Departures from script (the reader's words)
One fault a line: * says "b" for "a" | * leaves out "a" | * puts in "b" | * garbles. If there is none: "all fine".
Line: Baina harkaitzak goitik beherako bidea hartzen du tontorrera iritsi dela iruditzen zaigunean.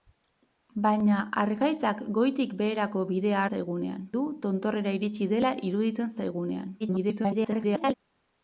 * says "zaigunean" for "hartzen"
* garbles